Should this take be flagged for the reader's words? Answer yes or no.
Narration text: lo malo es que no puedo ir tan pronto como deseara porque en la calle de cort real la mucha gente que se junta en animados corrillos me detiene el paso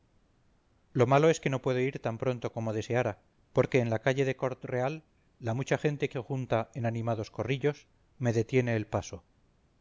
no